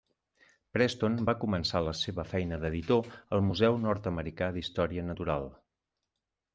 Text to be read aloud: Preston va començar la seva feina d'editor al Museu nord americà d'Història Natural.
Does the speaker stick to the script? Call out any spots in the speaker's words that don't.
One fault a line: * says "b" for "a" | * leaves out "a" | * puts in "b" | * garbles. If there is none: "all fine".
all fine